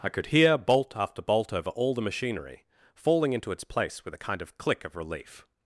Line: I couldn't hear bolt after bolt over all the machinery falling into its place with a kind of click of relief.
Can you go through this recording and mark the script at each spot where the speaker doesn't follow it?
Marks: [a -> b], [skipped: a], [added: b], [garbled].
I [couldn't -> could] hear bolt after bolt over all the machinery falling into its place with a kind of click of relief.